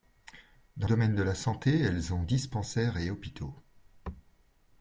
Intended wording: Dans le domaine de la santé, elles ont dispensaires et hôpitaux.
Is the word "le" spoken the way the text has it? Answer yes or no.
no